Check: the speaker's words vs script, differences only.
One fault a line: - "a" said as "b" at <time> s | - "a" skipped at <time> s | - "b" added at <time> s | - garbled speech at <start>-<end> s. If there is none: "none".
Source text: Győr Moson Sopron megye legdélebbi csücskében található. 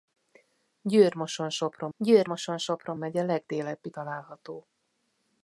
- "győr Moson Sopron" added at 2.0 s
- "csücskében" skipped at 3.9 s